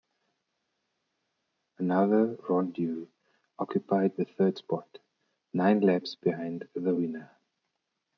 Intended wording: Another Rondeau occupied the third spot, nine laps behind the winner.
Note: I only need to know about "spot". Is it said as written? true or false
true